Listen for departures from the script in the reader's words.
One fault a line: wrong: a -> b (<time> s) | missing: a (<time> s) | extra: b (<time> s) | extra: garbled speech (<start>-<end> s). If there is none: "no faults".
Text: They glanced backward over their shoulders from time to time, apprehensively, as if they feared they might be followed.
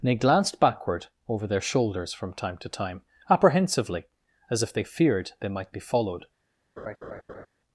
extra: and (0.0 s)